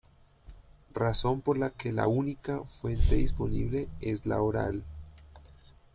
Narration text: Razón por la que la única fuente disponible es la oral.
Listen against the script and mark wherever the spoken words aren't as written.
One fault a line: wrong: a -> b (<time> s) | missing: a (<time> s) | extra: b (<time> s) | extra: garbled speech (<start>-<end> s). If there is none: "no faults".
no faults